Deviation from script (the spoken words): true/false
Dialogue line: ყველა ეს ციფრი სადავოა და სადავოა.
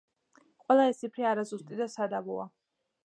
true